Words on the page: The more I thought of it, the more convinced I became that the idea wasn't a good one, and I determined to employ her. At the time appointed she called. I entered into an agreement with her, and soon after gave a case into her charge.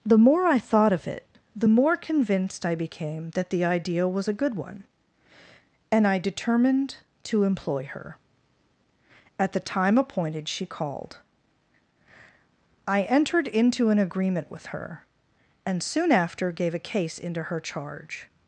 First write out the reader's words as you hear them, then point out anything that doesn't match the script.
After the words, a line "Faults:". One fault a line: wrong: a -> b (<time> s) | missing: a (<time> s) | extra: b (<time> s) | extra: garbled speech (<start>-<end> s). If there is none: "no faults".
The more I thought of it, the more convinced I became that the idea was a good one, and I determined to employ her. At the time appointed she called. I entered into an agreement with her, and soon after gave a case into her charge.
Faults:
wrong: wasn't -> was (4.1 s)